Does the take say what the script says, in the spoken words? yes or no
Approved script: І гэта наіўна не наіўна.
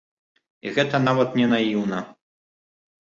no